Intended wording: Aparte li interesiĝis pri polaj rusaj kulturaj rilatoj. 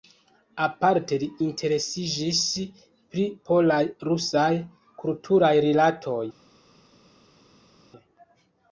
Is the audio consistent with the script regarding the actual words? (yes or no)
yes